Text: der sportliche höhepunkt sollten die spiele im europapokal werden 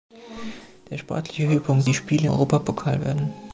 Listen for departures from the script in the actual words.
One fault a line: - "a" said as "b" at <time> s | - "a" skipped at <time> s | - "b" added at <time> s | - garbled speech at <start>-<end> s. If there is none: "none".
- "sollten" skipped at 1.9 s
- "im" skipped at 2.3 s